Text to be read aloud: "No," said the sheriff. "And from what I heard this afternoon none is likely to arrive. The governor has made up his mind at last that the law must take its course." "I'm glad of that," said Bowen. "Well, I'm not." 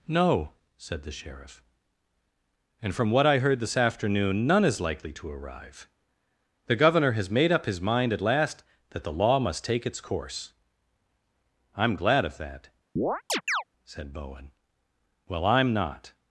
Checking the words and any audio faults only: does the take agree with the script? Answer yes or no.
no